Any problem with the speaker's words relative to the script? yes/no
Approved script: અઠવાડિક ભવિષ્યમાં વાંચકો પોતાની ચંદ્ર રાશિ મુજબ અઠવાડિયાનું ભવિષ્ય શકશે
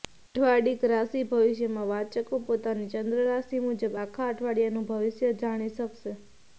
yes